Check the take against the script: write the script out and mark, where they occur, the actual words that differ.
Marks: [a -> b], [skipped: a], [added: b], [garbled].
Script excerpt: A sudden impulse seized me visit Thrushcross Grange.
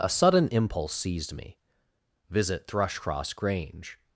A sudden impulse seized me visit Thrushcross Grange.